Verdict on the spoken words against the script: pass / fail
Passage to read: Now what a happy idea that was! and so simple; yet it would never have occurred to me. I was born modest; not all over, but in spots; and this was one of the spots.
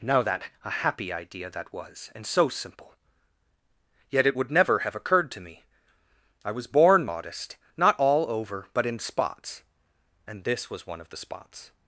fail